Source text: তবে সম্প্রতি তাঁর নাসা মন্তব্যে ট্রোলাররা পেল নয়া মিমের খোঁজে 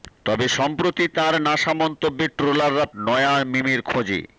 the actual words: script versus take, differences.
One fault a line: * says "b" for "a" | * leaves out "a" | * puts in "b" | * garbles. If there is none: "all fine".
* leaves out "পেল"